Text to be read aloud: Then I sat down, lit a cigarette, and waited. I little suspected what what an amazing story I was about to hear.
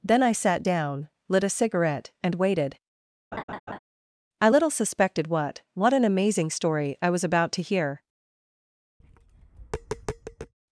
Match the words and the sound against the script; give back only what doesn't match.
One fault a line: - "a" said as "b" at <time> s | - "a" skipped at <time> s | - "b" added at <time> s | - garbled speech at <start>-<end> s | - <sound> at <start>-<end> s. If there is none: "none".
- laugh at 3.3-3.8 s
- tap at 9.0-10.5 s